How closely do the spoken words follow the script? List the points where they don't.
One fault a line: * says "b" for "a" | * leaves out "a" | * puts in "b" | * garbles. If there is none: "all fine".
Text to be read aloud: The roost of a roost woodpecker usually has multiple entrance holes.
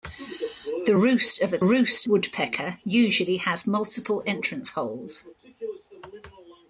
all fine